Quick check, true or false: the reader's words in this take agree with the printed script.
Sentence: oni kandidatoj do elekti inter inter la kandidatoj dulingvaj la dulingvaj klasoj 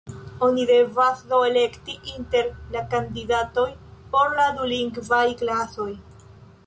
false